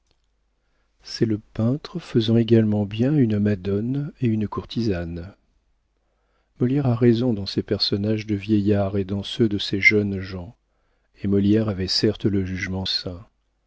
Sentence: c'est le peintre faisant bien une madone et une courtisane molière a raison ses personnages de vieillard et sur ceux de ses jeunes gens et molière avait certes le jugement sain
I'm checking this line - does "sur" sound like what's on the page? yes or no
no